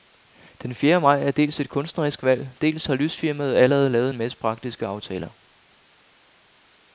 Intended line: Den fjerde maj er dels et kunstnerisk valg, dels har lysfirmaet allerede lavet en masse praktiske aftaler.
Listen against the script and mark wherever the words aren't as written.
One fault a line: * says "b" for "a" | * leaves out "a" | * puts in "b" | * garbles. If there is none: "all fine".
all fine